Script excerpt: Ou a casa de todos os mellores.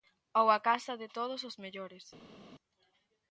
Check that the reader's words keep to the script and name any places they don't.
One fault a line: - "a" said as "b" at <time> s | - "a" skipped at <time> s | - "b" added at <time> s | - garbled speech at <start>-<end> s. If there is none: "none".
none